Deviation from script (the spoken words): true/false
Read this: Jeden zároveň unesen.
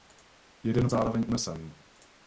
false